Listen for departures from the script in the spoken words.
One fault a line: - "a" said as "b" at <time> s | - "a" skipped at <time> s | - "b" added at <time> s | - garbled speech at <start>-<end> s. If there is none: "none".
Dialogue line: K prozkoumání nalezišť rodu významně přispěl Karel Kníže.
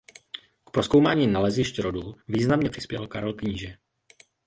none